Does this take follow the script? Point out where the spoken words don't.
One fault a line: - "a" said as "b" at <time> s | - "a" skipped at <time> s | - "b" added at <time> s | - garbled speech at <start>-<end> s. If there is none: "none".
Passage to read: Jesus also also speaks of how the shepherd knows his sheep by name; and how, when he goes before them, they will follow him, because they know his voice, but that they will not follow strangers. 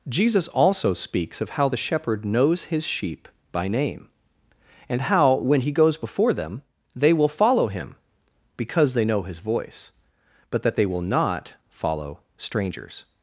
- "also" skipped at 0.9 s